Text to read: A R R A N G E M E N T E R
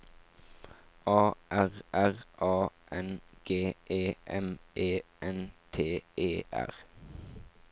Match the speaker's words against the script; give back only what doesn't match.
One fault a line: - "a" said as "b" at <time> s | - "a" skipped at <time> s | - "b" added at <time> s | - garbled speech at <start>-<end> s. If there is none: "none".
none